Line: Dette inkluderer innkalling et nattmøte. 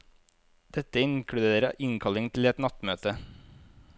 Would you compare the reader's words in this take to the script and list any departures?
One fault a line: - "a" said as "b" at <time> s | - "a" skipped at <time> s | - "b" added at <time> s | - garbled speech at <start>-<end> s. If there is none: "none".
- "til" added at 2.3 s